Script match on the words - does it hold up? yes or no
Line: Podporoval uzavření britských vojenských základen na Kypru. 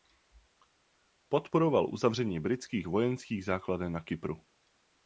yes